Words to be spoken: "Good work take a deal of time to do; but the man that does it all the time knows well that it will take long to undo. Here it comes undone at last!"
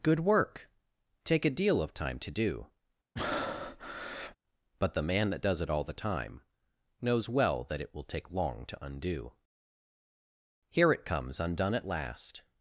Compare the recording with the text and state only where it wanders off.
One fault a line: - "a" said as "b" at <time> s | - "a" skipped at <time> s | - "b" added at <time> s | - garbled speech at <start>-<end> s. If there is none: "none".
none